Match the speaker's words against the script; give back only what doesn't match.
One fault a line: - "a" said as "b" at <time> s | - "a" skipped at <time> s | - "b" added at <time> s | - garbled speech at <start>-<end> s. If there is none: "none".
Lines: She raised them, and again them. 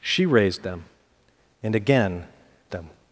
none